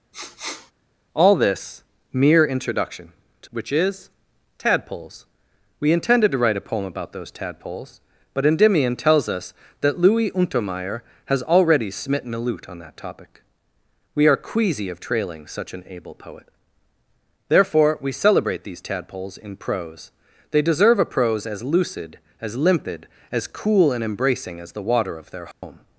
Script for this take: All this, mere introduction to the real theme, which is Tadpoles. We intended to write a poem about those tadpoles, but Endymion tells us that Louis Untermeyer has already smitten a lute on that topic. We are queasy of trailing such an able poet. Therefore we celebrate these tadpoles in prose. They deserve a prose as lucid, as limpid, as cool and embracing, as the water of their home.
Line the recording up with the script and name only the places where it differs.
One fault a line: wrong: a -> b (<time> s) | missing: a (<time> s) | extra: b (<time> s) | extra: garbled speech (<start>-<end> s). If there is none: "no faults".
missing: the real theme (3.5 s)